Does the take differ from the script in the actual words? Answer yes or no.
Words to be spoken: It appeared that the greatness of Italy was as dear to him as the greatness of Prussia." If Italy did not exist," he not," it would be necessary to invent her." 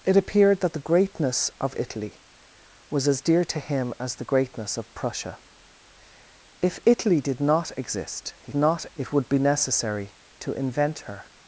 no